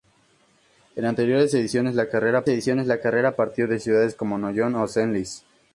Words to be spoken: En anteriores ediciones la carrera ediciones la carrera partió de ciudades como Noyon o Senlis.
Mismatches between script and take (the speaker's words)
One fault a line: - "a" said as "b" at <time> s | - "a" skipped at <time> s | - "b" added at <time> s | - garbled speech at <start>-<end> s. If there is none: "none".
none